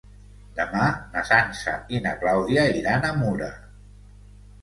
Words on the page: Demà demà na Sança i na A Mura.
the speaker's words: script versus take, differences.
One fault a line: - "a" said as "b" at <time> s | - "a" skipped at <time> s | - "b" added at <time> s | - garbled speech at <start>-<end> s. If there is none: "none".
- "demà" skipped at 0.8 s
- "Clàudia iran" added at 2.2 s